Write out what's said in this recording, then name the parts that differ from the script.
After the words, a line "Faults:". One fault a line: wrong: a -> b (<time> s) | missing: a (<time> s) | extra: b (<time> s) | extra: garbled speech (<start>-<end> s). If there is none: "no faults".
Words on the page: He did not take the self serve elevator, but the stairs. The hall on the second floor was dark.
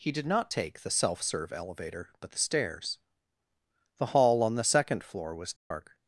He did not take the self serve elevator, but the stairs. The hall on the second floor was dark.
Faults:
no faults